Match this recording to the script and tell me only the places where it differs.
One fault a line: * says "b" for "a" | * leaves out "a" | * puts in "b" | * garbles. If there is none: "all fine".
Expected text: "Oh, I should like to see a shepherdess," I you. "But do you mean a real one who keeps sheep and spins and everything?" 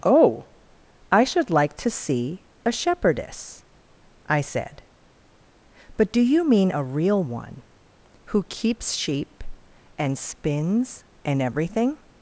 * says "said" for "you"